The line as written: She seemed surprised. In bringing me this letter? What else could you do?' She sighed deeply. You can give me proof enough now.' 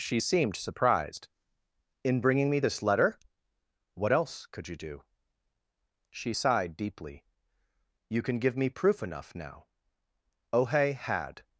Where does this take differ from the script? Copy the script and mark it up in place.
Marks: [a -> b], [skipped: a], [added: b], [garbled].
She seemed surprised. In bringing me this letter? What else could you do?' She sighed deeply. You can give me proof enough now.' [added: ohe had]